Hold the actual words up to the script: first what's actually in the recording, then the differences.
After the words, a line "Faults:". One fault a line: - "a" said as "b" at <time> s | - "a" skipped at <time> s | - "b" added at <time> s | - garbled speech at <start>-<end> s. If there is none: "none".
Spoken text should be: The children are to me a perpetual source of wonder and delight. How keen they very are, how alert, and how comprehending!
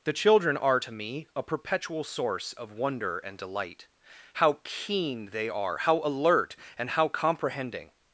The children are to me a perpetual source of wonder and delight. How keen they are, how alert, and how comprehending!
Faults:
- "very" skipped at 5.5 s